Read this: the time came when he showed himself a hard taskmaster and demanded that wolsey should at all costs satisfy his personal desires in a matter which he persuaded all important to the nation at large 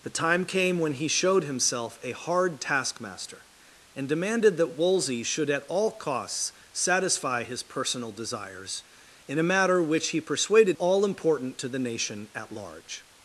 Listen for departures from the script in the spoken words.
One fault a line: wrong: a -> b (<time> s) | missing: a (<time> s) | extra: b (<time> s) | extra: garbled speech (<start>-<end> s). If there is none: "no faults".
no faults